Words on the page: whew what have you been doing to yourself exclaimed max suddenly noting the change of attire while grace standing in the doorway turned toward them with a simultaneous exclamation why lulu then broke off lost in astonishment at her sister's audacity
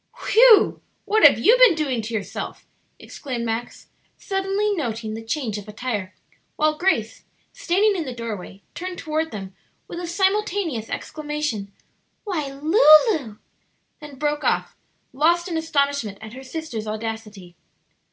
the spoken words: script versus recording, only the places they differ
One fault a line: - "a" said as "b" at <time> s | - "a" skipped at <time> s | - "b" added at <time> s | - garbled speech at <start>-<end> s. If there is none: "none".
none